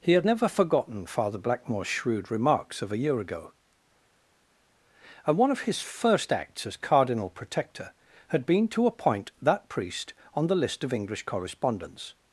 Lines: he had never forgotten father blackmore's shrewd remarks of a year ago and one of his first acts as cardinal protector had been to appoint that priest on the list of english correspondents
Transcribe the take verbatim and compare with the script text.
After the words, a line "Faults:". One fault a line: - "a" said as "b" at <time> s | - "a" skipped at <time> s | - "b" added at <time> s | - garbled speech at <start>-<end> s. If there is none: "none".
he had never forgotten father blackmore's shrewd remarks of a year ago and one of his first acts as cardinal protector had been to appoint that priest on the list of english correspondents
Faults:
none